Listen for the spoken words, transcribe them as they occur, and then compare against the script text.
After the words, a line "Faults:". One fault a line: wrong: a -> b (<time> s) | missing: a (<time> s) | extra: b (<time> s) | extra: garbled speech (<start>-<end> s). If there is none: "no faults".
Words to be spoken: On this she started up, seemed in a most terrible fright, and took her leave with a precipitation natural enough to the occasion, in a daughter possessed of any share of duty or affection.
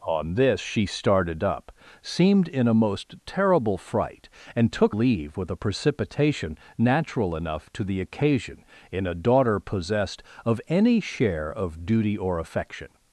On this she started up, seemed in a most terrible fright, and took leave with a precipitation natural enough to the occasion, in a daughter possessed of any share of duty or affection.
Faults:
missing: her (5.0 s)